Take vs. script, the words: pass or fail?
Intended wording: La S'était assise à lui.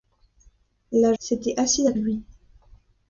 pass